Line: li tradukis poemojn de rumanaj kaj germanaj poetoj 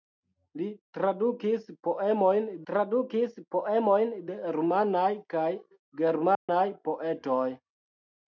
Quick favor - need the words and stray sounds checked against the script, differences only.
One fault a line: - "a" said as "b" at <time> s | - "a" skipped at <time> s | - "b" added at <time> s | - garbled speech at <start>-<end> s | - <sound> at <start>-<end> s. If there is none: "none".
- "tradukis poemojn" added at 2.7 s
- dropout at 6.3-6.5 s